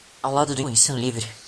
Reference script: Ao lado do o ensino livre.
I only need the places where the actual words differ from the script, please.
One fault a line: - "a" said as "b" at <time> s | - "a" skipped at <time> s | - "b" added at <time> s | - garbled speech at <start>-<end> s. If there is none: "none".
none